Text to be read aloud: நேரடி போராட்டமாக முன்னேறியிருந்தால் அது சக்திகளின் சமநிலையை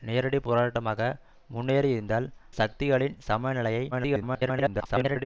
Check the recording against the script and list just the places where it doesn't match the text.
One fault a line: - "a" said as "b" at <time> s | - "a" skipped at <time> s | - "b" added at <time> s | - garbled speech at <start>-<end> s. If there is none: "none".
- "அது" skipped at 2.3 s
- garbled speech at 3.9-5.3 s